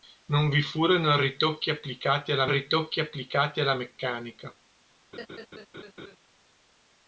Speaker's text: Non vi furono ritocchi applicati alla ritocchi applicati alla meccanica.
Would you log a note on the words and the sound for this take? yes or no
yes